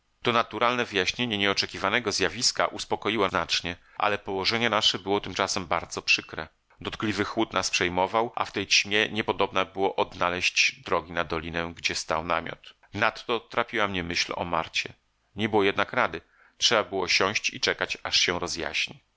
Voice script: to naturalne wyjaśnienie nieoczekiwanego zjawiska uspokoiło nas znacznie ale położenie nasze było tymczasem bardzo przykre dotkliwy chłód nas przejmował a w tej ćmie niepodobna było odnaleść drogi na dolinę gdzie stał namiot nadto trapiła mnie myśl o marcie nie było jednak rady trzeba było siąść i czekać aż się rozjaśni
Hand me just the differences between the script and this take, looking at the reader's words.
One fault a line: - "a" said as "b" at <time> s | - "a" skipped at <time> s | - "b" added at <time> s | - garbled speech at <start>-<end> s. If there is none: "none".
- "nas" skipped at 3.3 s